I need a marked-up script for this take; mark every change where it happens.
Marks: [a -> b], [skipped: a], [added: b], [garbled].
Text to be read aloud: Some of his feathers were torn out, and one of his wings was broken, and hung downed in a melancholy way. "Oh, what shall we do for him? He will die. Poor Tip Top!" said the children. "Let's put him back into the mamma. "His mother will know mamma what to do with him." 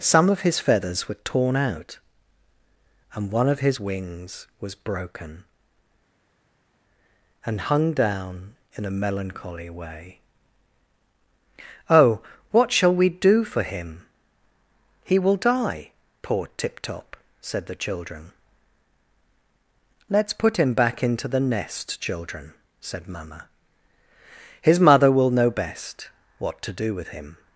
Some of his feathers were torn out, and one of his wings was broken, and hung [downed -> down] in a melancholy way. "Oh, what shall we do for him? He will die. Poor Tip Top!" said the children. "Let's put him back into the [added: nest children said] mamma. "His mother will know [mamma -> best] what to do with him."